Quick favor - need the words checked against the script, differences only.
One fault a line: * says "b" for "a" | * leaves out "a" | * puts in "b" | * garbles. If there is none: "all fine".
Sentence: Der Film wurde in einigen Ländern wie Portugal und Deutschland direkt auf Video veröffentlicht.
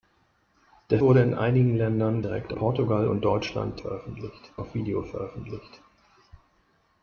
* leaves out "Film"
* says "direkt" for "wie"
* says "veröffentlicht" for "direkt"